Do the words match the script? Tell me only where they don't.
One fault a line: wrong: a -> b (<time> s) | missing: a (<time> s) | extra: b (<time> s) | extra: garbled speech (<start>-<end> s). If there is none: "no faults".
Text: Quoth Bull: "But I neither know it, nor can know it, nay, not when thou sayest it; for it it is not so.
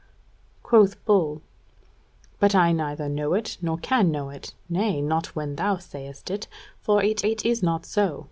no faults